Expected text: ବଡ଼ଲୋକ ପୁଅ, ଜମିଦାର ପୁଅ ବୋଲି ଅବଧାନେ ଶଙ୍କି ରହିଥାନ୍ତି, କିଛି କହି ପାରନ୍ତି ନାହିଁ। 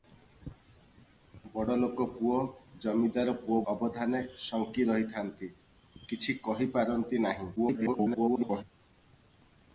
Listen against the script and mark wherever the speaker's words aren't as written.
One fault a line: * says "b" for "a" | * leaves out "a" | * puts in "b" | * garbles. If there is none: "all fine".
* leaves out "ବୋଲି"
* garbles